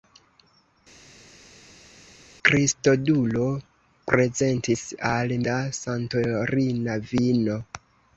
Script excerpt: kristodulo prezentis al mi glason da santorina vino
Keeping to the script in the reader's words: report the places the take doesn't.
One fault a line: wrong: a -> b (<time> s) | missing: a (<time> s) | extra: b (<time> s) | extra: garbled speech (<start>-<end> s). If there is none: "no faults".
missing: mi glason (5.4 s)